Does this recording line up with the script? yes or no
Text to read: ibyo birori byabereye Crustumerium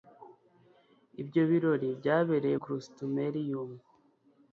yes